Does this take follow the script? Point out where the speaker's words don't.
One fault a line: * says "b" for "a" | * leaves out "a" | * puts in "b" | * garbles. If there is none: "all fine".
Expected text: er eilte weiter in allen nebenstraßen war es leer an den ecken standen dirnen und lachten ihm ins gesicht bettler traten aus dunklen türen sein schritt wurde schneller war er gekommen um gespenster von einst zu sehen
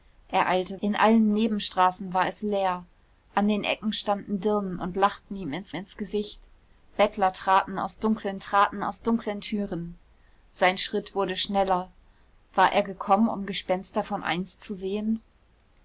* leaves out "weiter"
* puts in "ins"
* puts in "traten aus dunklen"